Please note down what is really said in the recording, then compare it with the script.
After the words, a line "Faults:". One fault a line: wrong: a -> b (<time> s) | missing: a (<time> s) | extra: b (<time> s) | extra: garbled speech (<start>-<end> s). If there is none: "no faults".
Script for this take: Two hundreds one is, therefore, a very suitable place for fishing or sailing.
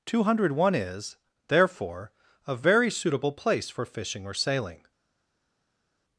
Two hundred one is, therefore, a very suitable place for fishing or sailing.
Faults:
wrong: hundreds -> hundred (0.2 s)